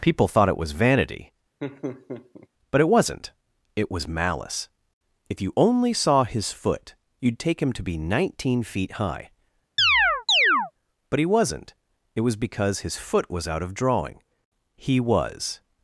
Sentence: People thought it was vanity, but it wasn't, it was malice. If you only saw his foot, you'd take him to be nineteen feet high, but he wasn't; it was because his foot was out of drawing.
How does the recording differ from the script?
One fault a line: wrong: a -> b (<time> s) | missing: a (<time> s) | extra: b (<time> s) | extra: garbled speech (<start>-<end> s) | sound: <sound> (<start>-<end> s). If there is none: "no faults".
sound: laugh (1.6-2.5 s)
sound: chirp (9.8-10.7 s)
extra: He was (14.8 s)